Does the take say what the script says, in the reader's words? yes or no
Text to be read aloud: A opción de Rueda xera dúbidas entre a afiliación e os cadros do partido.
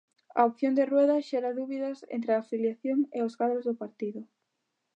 yes